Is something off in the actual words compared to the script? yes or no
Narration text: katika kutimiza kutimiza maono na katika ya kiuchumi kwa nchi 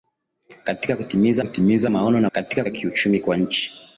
no